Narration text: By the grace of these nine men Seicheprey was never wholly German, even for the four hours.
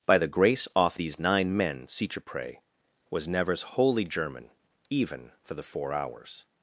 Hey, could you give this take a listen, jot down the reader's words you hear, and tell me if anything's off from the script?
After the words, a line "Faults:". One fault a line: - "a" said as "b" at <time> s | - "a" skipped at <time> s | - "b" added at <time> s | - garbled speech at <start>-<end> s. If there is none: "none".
By the grace off these nine men Seicheprey was nevers wholly German, even for the four hours.
Faults:
- "of" said as "off" at 0.8 s
- "never" said as "nevers" at 3.3 s